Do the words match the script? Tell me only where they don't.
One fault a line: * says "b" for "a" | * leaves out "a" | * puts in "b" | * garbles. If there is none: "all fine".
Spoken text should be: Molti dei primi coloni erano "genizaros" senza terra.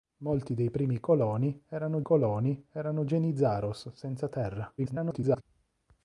* puts in "coloni erano"
* garbles